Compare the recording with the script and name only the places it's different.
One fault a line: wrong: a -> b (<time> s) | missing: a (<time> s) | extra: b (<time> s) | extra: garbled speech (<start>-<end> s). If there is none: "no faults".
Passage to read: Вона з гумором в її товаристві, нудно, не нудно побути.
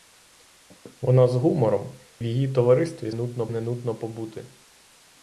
no faults